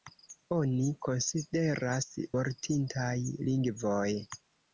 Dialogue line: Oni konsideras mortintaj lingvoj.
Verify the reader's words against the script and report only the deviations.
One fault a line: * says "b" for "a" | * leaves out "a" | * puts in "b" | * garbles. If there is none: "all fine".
all fine